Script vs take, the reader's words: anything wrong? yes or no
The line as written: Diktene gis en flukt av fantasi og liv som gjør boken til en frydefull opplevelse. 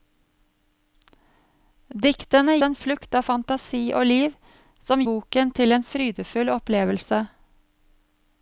yes